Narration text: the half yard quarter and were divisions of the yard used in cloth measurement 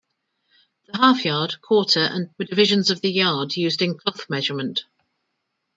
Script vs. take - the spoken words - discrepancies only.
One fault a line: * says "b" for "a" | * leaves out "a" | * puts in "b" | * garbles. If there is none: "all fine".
all fine